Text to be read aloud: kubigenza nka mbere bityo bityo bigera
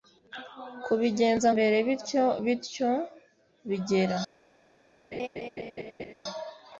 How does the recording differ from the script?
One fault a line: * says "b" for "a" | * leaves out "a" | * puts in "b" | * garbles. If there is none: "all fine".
* leaves out "nka"